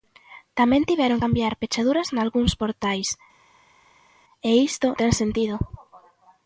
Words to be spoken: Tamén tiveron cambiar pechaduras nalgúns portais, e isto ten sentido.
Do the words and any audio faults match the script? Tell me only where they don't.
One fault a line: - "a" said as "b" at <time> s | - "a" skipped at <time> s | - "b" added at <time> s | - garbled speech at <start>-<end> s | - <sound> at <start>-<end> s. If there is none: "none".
none